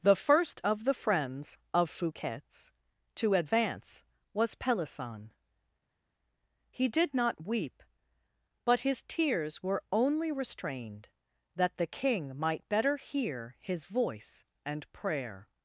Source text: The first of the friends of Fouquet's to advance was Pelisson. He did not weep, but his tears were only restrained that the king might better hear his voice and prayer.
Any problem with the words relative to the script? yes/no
no